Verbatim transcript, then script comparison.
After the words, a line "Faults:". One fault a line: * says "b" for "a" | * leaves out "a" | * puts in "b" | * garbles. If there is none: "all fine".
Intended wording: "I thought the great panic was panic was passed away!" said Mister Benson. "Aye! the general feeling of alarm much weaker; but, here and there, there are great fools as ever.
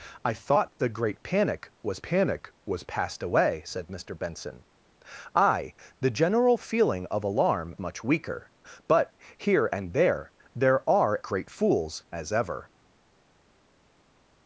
"I thought the great panic was panic was passed away!" said Mister Benson. "Aye! the general feeling of alarm much weaker; but, here and there, there are great fools as ever.
Faults:
all fine